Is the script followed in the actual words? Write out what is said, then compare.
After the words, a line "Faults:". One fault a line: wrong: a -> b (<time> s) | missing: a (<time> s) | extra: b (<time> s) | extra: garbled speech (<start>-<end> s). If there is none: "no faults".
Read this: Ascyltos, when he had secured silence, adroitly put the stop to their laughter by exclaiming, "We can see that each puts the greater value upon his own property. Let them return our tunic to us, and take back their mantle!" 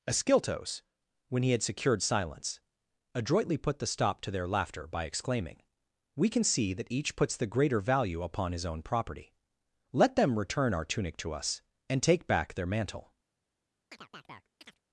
Ascyltos, when he had secured silence, adroitly put the stop to their laughter by exclaiming, "We can see that each puts the greater value upon his own property. Let them return our tunic to us, and take back their mantle!"
Faults:
no faults